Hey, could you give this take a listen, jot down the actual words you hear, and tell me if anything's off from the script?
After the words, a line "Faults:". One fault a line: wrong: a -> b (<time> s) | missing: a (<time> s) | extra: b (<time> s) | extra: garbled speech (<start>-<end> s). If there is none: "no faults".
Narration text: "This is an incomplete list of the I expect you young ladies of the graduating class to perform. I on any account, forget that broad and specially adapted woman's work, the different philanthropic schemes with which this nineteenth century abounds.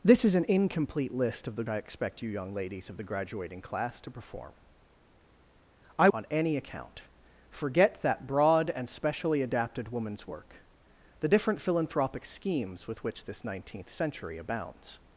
"This is an incomplete list of the I expect you young ladies of the graduating class to perform. I on any account, forget that broad and specially adapted woman's work, the different philanthropic schemes with which this nineteenth century abounds.
Faults:
no faults